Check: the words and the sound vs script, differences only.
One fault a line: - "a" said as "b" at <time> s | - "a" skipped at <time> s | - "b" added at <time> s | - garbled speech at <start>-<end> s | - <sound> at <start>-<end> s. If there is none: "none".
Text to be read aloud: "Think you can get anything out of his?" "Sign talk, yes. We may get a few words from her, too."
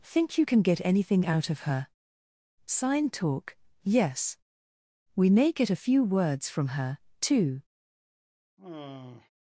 - "his" said as "her" at 1.7 s
- sigh at 8.6-9.3 s